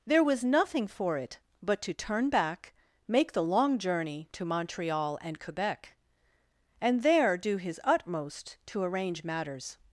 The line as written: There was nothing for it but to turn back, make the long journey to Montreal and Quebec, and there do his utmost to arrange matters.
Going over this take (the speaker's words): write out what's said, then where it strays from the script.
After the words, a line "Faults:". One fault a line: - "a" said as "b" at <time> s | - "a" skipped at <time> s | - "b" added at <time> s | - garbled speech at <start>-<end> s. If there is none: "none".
There was nothing for it but to turn back, make the long journey to Montreal and Quebec, and there do his utmost to arrange matters.
Faults:
none